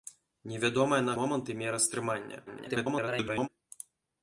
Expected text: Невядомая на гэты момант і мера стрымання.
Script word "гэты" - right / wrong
wrong